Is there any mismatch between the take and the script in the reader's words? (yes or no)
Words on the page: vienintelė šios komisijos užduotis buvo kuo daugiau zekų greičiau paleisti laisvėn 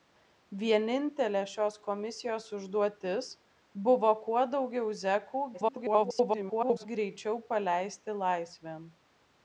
yes